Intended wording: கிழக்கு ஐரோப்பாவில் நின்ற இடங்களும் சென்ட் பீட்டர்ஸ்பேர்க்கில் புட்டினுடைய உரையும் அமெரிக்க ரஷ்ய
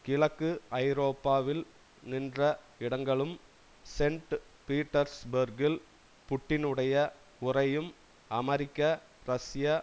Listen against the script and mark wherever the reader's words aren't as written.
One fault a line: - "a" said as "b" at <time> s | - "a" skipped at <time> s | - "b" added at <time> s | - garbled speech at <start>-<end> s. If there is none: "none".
none